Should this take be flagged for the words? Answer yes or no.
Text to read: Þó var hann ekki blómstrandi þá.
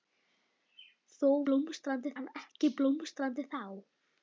yes